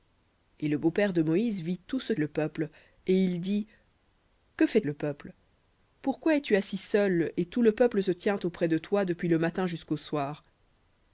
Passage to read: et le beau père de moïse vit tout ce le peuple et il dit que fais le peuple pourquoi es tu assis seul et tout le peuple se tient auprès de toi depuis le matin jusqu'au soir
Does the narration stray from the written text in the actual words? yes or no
no